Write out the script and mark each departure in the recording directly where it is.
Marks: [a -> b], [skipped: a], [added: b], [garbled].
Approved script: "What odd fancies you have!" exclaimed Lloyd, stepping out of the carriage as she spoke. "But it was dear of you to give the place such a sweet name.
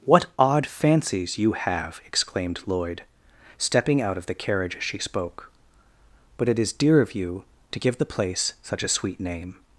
"What odd fancies you have!" exclaimed Lloyd, stepping out of the carriage as she spoke. "But it [was -> is] dear of you to give the place such a sweet name.